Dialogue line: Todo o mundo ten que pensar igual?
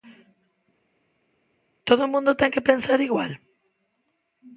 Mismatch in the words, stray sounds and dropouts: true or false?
false